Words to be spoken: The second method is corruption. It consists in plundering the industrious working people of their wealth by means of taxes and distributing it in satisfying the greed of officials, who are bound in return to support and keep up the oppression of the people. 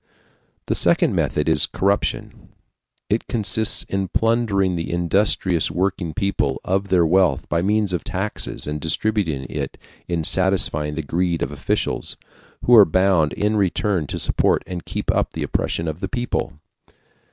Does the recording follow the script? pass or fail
pass